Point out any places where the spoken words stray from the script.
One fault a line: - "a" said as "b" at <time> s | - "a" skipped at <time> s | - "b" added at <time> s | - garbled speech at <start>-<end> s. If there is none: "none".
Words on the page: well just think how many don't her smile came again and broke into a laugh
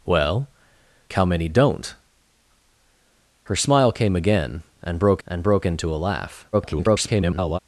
- "just think" skipped at 0.5 s
- "and broke" added at 5.3 s
- garbled speech at 6.5-7.6 s